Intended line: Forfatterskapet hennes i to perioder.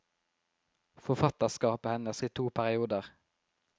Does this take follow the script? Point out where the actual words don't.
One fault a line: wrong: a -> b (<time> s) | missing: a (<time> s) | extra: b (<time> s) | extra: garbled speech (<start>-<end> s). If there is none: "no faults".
no faults